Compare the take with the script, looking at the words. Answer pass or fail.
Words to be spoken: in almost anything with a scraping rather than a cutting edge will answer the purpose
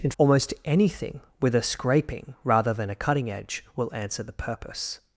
pass